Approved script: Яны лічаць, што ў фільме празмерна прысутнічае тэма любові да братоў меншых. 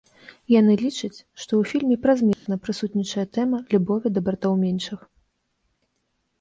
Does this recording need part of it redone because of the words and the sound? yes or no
yes